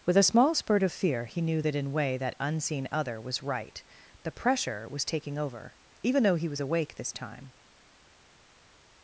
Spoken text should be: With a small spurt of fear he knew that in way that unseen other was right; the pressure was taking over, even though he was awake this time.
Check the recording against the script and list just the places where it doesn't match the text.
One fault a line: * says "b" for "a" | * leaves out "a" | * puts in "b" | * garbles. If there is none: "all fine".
all fine